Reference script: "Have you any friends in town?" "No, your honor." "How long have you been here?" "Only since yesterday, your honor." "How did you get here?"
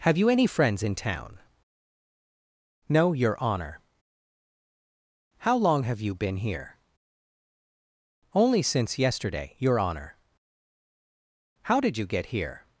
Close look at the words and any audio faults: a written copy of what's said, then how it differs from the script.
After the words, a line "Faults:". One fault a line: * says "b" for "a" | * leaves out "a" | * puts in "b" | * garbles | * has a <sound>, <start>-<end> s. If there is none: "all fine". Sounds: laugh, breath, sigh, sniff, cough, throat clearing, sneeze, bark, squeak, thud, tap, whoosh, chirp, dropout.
"Have you any friends in town?" "No, your honor." "How long have you been here?" "Only since yesterday, your honor." "How did you get here?"
Faults:
all fine